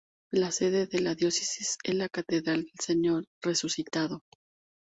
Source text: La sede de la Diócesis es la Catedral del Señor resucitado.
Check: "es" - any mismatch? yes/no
no